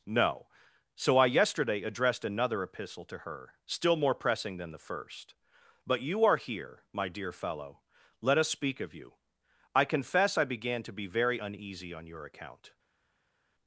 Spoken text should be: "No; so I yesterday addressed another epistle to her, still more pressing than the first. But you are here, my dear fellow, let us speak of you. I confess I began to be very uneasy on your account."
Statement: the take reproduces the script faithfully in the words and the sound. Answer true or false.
true